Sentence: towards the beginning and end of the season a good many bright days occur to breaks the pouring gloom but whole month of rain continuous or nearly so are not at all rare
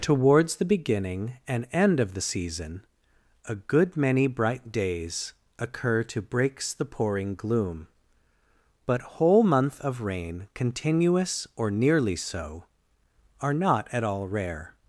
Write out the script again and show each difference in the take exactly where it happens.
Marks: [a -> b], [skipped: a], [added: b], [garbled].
towards the beginning and end of the season a good many bright days occur to breaks the pouring gloom but whole month of rain continuous or nearly so are not at all rare